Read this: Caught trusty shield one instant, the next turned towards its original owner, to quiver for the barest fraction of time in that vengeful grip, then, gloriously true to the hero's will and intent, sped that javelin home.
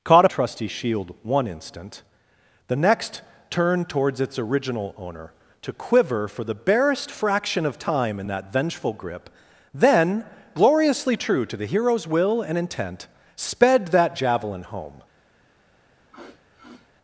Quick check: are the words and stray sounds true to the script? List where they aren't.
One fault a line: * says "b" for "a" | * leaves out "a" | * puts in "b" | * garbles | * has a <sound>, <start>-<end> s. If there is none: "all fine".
* has a sniff, 16.1-16.9 s